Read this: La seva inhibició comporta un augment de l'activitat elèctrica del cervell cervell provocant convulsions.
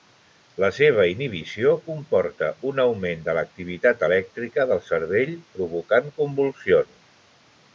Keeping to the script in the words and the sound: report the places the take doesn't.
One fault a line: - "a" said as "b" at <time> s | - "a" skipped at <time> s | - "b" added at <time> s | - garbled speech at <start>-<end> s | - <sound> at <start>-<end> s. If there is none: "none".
- "cervell" skipped at 5.3 s